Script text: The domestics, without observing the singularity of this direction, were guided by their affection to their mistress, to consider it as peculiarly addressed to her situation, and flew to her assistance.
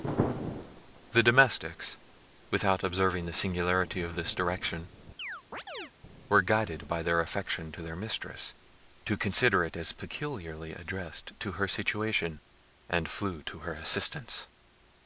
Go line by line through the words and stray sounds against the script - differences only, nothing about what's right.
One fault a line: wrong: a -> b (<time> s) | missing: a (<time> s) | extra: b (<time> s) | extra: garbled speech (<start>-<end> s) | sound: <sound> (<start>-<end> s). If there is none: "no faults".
sound: chirp (5.2-5.9 s)